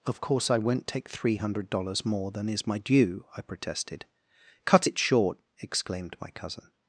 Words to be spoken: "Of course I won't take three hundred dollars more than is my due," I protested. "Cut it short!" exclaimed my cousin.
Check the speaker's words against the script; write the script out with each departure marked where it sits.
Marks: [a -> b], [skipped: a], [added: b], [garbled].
"Of course I won't take three hundred dollars more than is my due," I protested. "Cut it short!" exclaimed my cousin.